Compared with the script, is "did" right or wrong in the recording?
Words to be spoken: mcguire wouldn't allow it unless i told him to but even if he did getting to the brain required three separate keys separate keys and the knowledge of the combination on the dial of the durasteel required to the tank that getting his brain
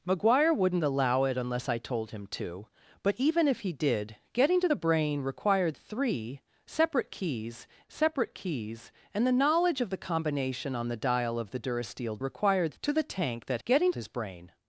right